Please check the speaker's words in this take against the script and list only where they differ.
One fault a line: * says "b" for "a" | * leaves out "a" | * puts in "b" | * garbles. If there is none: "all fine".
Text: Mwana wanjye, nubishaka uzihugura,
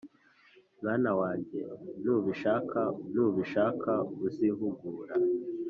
* puts in "nubishaka"